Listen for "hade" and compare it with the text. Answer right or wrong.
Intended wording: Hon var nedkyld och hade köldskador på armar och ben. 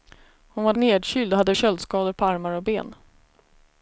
right